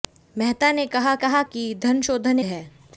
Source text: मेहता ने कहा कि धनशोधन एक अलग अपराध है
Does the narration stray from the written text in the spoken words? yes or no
yes